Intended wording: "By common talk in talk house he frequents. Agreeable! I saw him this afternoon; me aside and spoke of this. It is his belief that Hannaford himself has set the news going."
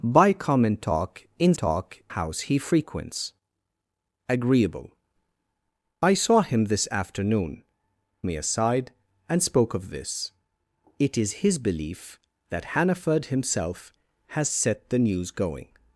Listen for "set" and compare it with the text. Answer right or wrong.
right